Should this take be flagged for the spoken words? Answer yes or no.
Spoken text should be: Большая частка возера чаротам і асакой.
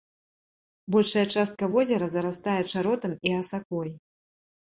yes